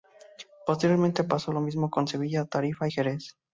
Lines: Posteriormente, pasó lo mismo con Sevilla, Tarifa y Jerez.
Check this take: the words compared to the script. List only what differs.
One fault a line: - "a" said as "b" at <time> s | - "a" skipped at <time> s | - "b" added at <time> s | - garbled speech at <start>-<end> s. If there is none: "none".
none